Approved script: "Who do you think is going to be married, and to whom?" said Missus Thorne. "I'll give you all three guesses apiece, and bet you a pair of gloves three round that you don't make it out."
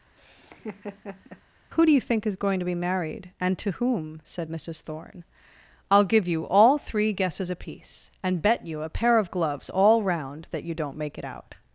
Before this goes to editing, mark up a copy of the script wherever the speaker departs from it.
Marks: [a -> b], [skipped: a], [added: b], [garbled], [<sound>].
[laugh] "Who do you think is going to be married, and to whom?" said Missus Thorne. "I'll give you all three guesses apiece, and bet you a pair of gloves [three -> all] round that you don't make it out."